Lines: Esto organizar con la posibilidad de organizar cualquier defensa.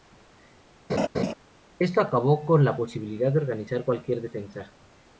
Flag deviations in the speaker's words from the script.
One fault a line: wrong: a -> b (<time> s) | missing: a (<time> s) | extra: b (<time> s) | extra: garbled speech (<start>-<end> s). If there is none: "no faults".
wrong: organizar -> acabó (2.0 s)